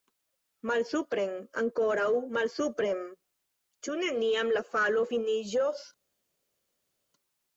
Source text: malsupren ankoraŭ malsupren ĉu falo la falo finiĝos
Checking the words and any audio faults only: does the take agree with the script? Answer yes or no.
no